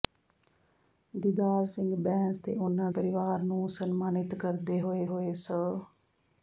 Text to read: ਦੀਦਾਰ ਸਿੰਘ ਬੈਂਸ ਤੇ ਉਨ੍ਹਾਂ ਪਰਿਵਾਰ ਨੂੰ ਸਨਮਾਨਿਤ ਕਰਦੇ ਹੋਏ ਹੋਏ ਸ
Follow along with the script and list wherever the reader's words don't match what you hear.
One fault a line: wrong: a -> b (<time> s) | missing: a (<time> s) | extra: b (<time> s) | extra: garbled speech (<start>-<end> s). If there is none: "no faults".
no faults